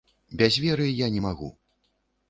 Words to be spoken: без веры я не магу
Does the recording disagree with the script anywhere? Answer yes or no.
no